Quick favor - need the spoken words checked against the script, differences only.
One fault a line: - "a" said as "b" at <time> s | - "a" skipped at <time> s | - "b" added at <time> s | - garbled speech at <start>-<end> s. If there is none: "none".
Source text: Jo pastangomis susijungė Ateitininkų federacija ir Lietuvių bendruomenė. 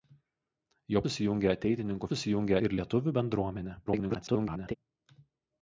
- "pastangomis" skipped at 1.0 s
- "federacija" said as "susijungė" at 2.1 s
- garbled speech at 3.9-4.7 s